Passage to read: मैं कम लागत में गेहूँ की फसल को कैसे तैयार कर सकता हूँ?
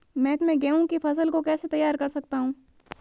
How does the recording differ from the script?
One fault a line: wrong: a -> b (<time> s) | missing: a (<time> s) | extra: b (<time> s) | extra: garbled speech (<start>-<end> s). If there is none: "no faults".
missing: कम लागत (0.4 s)